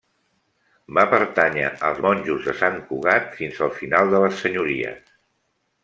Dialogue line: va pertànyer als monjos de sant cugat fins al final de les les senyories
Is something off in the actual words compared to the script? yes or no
yes